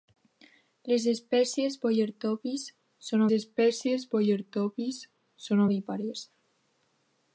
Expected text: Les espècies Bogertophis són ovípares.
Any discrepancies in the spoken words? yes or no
yes